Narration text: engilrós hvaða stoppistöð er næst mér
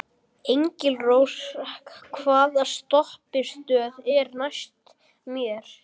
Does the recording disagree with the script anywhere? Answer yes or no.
no